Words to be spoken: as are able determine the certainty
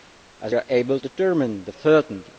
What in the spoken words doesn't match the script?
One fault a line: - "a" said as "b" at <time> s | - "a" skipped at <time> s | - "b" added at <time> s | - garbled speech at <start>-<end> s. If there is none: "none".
none